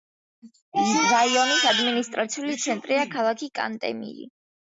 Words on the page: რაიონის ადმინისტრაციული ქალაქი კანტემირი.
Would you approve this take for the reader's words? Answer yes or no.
no